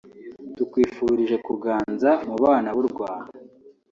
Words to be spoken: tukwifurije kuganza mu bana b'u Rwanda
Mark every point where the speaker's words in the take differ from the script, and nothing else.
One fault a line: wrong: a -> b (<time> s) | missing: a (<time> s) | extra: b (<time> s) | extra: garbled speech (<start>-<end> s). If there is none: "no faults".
no faults